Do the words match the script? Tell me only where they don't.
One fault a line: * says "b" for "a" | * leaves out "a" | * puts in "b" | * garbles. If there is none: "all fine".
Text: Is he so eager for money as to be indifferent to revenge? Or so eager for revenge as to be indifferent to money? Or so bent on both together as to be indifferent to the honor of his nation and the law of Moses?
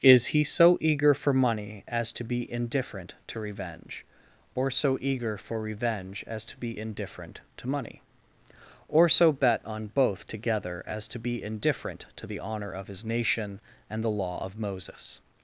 * says "bet" for "bent"